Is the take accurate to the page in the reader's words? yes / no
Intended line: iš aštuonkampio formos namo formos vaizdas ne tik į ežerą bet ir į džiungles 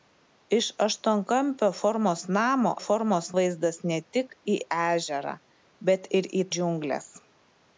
yes